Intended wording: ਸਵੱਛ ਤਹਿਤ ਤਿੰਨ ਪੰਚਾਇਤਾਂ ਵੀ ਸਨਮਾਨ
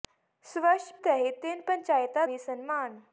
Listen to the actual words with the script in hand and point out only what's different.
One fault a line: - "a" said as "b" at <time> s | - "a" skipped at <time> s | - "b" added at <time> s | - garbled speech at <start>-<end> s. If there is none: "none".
none